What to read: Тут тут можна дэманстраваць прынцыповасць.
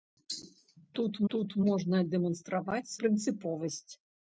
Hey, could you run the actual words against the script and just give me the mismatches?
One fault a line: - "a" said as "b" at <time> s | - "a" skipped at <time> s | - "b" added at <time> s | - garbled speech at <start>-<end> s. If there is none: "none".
none